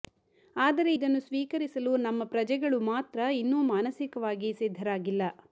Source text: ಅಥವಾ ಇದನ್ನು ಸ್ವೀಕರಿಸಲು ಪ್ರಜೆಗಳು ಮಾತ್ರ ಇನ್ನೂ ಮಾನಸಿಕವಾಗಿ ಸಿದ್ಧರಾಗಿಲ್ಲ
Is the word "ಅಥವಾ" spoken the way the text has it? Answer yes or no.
no